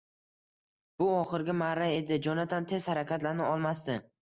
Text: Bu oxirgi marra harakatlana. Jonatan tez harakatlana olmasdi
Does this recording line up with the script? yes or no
no